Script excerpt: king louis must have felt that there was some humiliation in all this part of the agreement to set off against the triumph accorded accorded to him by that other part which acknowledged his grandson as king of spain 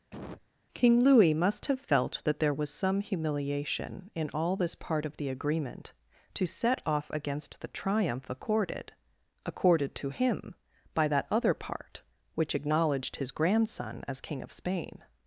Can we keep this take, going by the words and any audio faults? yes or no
no